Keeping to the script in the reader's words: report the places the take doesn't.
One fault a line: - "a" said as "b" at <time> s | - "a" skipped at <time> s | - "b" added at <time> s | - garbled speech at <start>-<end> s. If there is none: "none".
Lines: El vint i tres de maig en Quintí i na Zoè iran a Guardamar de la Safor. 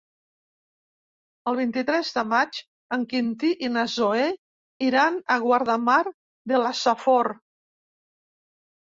none